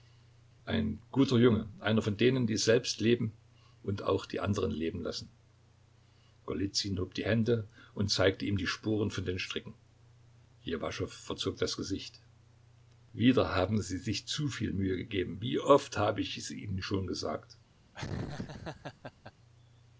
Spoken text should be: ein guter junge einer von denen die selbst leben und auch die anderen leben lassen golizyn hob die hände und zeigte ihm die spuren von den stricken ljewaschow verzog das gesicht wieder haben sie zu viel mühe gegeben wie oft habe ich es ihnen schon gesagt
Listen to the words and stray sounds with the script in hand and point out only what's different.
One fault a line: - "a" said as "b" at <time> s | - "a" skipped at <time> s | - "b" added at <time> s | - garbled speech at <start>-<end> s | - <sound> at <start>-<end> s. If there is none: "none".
- "sich" added at 14.0 s
- laugh at 17.9-19.3 s